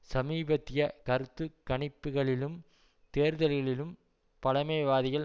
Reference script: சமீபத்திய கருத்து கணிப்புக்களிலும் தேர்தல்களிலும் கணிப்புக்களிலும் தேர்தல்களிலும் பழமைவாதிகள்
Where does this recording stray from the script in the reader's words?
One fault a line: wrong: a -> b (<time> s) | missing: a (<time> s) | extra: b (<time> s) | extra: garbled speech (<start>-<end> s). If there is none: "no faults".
missing: கணிப்புக்களிலும் தேர்தல்களிலும் (3.9 s)